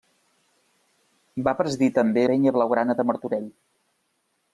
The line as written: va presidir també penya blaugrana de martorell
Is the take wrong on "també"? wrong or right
right